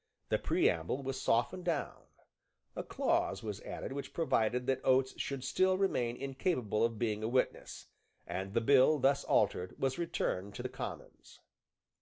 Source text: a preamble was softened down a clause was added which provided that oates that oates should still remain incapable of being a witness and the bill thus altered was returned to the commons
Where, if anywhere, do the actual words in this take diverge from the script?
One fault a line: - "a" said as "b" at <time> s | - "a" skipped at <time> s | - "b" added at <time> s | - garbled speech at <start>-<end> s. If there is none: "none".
- "a" said as "the" at 0.3 s
- "that oates" skipped at 5.1 s